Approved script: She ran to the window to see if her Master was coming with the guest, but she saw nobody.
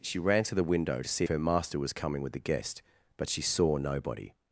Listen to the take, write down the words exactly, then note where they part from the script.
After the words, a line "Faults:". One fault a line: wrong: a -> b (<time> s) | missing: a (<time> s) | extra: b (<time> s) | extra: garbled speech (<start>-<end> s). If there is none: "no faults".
She ran to the window to see her Master was coming with the guest, but she saw nobody.
Faults:
missing: if (1.3 s)